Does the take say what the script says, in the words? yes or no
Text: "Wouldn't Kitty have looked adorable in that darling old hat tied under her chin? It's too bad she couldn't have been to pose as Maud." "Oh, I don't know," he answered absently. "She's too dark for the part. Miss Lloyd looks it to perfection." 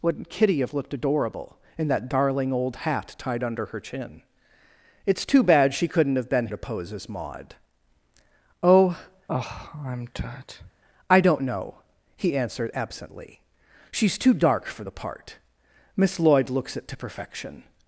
yes